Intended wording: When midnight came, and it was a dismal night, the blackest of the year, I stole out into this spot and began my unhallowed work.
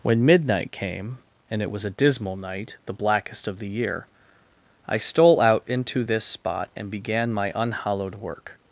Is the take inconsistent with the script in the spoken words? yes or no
no